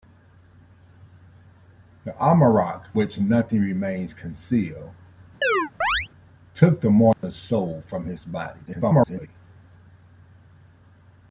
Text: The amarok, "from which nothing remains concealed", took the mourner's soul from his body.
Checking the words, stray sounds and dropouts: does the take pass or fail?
fail